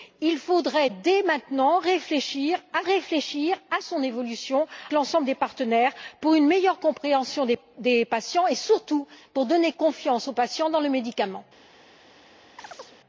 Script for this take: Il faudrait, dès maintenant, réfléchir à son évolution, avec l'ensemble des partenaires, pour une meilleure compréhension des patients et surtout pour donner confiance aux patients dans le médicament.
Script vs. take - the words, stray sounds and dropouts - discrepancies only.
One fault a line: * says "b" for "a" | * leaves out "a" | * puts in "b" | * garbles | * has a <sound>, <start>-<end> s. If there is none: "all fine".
* puts in "réfléchir à"
* leaves out "avec"
* has a chirp, 12.6-13.0 s